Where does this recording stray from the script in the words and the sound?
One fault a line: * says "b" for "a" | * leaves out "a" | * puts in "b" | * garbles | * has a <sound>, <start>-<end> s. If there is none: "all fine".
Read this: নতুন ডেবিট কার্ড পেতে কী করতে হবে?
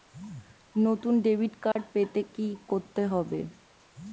* has a dropout, 1.7-1.8 s